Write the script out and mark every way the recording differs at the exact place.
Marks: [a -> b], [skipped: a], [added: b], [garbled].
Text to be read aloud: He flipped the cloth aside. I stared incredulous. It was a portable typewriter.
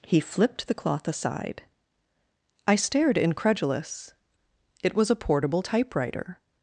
He flipped the cloth aside. I stared incredulous. It was a portable typewriter.